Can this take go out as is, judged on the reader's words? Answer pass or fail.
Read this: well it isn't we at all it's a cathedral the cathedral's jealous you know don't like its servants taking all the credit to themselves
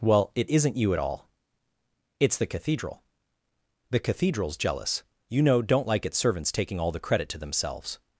fail